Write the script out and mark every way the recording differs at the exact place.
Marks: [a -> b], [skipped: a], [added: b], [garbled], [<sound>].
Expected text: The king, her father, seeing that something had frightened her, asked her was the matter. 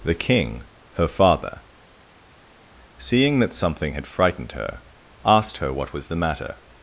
The king, her father, seeing that something had frightened her, asked her [added: what] was the matter.